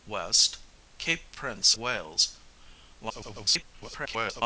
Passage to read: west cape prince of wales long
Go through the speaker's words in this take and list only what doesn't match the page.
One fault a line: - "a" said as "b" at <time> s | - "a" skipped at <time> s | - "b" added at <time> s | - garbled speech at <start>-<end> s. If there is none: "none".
- "of" skipped at 1.7 s
- garbled speech at 3.1-4.4 s